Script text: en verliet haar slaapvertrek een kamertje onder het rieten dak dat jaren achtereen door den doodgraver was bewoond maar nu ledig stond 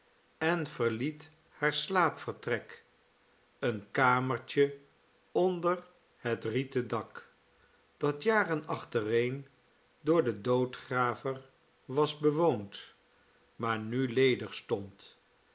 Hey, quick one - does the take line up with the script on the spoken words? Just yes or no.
yes